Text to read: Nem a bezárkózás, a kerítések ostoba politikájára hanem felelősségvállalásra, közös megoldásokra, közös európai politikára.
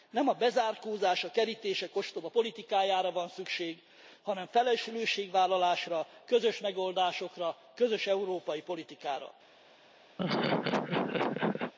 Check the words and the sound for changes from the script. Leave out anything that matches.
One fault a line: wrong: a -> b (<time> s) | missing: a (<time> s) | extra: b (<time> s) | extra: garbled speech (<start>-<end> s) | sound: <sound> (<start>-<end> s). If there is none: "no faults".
extra: van szükség (3.1 s)
sound: laugh (10.2-11.7 s)